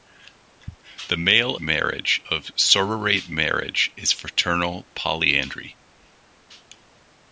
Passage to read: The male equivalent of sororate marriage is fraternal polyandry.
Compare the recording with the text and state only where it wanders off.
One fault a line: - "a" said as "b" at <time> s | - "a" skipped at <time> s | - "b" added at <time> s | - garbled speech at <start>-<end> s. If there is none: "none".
- "equivalent" said as "marriage" at 1.6 s